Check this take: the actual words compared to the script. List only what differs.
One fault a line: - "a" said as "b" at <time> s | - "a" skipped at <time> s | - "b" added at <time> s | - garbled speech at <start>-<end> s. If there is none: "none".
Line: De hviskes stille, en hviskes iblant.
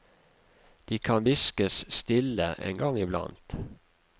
- "kan" added at 1.0 s
- "hviskes" said as "gang" at 2.8 s